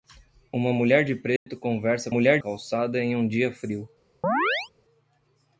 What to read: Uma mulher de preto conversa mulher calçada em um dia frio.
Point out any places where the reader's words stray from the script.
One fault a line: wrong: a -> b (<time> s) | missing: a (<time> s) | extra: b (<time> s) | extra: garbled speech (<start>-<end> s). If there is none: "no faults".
no faults